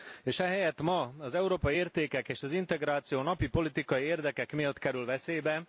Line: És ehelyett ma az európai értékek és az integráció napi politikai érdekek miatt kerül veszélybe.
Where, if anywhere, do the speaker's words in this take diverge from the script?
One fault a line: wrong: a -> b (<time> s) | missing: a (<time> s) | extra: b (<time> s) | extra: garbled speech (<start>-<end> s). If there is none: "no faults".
no faults